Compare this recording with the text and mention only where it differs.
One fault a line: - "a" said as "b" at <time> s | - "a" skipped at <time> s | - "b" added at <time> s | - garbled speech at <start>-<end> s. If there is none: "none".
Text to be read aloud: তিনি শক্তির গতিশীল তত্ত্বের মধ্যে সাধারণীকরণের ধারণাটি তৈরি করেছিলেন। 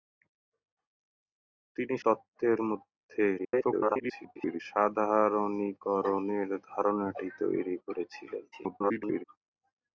- "শক্তির গতিশীল" skipped at 1.9 s
- garbled speech at 3.4-4.6 s
- garbled speech at 8.5-9.2 s